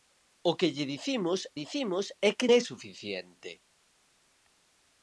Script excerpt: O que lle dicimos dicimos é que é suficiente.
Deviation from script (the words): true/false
false